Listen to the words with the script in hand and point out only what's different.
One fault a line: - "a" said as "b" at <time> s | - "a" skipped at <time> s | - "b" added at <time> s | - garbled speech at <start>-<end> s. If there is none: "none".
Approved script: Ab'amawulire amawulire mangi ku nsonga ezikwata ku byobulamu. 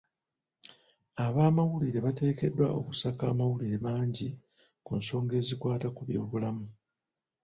- "bateekeddwa okusaka" added at 2.0 s